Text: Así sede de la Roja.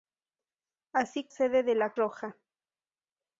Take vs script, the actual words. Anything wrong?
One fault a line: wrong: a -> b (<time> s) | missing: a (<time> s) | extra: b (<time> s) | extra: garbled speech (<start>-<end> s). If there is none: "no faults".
no faults